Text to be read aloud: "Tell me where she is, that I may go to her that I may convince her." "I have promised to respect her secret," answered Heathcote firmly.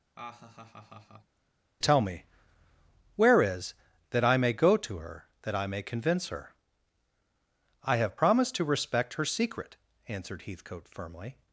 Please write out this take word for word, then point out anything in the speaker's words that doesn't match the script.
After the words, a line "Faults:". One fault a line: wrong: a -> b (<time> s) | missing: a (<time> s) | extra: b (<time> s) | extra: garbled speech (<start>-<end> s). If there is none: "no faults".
"Tell me where is, that I may go to her that I may convince her." "I have promised to respect her secret," answered Heathcote firmly.
Faults:
missing: she (3.4 s)